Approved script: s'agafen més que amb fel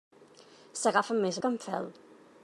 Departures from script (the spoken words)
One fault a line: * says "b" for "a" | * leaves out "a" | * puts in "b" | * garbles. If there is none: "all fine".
all fine